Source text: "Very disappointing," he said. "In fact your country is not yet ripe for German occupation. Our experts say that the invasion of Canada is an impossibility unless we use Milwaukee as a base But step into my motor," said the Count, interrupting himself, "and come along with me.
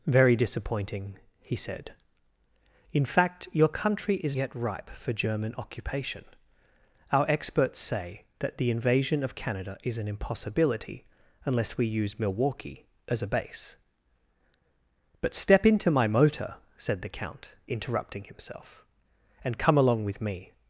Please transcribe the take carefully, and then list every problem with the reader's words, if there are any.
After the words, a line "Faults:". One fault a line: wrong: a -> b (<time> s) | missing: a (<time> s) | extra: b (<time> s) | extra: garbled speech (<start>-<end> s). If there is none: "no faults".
"Very disappointing," he said. "In fact your country is yet ripe for German occupation. Our experts say that the invasion of Canada is an impossibility unless we use Milwaukee as a base But step into my motor," said the Count, interrupting himself, "and come along with me.
Faults:
missing: not (4.3 s)